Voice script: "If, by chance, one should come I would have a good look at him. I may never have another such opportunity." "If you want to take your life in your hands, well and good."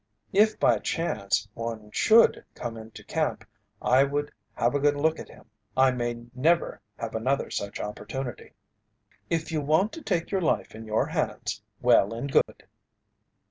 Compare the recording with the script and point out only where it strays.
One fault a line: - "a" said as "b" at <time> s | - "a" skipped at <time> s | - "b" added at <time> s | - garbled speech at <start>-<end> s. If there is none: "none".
- "into camp" added at 2.8 s